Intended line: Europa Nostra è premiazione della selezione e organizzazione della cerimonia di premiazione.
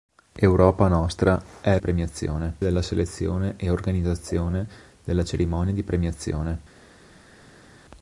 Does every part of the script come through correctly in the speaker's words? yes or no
yes